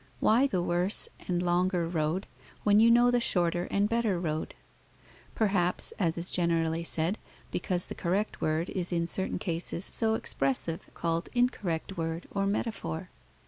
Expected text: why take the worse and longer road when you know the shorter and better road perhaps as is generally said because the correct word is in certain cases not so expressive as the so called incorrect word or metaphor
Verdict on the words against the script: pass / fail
fail